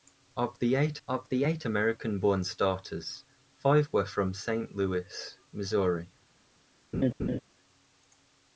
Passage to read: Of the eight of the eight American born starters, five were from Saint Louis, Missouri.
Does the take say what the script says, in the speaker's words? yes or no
yes